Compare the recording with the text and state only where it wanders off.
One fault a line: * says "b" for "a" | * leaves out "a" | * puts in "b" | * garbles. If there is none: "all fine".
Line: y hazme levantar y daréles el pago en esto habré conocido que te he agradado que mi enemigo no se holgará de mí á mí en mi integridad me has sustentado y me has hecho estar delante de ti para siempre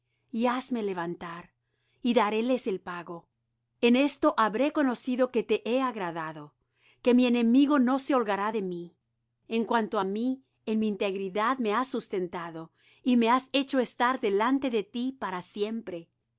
* puts in "en cuanto"